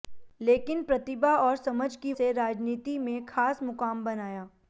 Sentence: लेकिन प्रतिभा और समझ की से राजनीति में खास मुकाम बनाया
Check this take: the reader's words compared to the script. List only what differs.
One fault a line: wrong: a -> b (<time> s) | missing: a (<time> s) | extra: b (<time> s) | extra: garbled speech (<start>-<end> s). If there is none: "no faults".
no faults